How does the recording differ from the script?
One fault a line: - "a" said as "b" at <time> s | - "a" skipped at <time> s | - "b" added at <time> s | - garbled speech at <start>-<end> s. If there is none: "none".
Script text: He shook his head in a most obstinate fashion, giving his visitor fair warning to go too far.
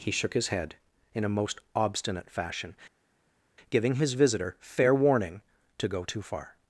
none